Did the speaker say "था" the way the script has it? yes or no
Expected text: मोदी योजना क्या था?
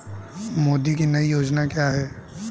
no